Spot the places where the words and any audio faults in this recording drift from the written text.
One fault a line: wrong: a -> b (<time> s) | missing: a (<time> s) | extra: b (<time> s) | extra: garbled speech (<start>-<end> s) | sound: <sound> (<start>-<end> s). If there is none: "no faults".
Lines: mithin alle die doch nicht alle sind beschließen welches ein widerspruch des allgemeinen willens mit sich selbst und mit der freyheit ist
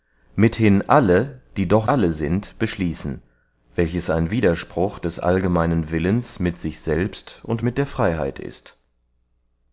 missing: nicht (1.9 s)